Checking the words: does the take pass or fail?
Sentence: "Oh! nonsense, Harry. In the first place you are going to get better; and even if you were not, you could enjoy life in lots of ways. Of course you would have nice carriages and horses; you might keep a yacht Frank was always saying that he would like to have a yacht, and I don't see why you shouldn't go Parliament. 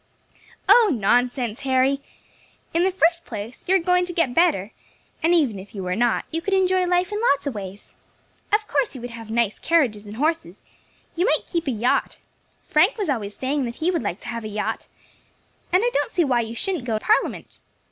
pass